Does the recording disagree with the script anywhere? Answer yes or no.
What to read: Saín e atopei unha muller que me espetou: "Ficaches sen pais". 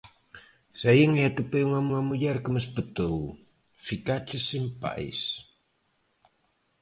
yes